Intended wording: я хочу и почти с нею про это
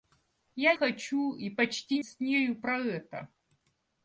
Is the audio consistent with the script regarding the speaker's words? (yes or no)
yes